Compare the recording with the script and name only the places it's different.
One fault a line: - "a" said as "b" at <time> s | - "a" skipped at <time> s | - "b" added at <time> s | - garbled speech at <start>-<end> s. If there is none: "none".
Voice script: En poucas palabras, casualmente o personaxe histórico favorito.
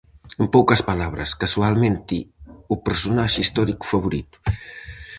none